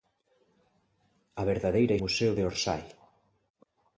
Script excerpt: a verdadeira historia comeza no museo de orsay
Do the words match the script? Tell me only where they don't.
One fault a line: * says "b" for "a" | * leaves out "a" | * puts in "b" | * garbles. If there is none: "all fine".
* leaves out "historia comeza no"